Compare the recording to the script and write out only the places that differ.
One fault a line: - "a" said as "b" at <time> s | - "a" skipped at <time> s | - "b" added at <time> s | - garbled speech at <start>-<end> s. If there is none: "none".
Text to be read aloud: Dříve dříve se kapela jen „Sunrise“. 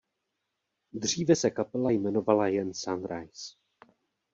- "dříve" skipped at 1.4 s
- "jmenovala" added at 1.9 s